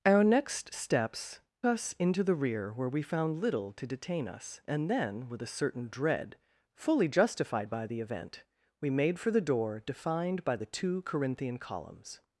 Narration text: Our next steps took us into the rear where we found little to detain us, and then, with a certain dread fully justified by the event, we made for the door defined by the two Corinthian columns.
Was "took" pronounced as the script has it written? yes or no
no